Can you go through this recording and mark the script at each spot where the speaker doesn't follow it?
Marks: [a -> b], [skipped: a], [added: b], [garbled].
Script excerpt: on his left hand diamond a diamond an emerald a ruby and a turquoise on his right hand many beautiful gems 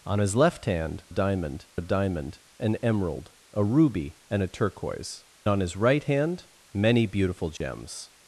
on his left hand diamond a diamond an emerald a ruby and a turquoise on his right hand many beautiful gems